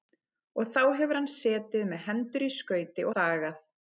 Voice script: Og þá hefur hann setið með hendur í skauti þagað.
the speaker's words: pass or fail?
pass